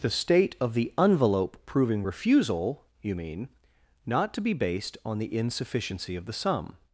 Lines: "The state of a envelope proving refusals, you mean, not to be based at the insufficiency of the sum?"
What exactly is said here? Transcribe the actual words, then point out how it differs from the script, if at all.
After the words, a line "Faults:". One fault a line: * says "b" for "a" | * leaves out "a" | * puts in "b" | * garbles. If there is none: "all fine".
"The state of the envelope proving refusal, you mean, not to be based on the insufficiency of the sum?"
Faults:
* says "the" for "a"
* says "refusal" for "refusals"
* says "on" for "at"